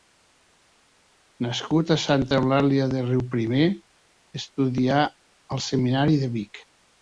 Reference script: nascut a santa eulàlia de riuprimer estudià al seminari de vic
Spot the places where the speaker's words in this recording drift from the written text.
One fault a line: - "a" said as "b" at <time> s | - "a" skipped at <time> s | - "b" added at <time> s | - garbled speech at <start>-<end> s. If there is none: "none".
none